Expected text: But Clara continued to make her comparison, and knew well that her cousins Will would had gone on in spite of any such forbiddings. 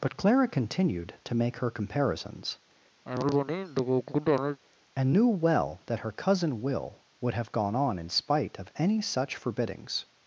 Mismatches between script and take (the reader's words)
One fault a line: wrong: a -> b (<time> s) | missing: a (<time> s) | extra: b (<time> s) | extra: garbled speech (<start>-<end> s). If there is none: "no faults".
wrong: comparison -> comparisons (1.7 s)
wrong: cousins -> cousin (6.1 s)
wrong: had -> have (7.3 s)